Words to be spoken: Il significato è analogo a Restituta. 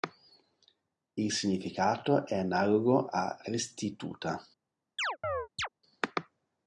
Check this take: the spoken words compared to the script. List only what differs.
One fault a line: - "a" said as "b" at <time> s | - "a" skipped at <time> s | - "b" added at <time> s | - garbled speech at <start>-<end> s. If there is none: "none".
none